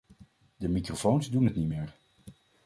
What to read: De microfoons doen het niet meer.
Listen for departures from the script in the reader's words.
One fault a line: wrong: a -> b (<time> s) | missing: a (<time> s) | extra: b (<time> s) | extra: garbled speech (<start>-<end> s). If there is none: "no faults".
no faults